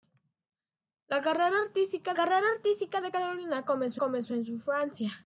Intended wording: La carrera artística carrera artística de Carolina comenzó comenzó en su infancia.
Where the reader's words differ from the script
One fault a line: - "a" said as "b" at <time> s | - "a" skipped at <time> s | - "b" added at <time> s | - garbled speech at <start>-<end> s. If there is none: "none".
none